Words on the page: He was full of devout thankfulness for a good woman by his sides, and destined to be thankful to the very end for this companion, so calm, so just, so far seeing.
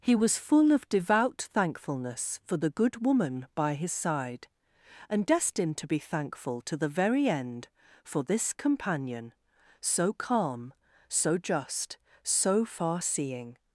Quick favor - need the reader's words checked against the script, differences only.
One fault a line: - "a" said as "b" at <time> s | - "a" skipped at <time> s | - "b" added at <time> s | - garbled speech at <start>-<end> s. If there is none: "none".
- "a" said as "the" at 2.6 s
- "sides" said as "side" at 3.9 s